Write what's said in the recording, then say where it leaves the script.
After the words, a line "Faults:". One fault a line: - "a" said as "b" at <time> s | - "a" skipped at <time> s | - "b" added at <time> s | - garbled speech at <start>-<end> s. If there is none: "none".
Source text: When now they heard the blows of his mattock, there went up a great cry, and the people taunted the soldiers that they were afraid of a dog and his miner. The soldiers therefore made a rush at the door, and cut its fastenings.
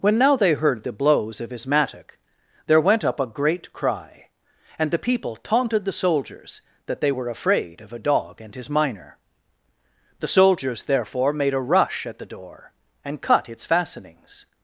When now they heard the blows of his mattock, there went up a great cry, and the people taunted the soldiers that they were afraid of a dog and his miner. The soldiers therefore made a rush at the door, and cut its fastenings.
Faults:
none